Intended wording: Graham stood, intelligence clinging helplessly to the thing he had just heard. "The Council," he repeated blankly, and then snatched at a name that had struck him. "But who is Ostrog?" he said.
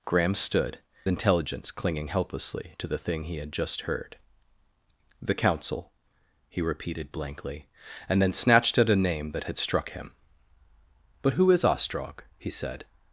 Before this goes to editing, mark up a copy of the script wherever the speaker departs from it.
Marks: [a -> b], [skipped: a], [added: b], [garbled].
Graham stood, intelligence clinging helplessly to the thing he had just heard. "The Council," he repeated blankly, and then snatched at a name that had struck him. "But who is Ostrog?" he said.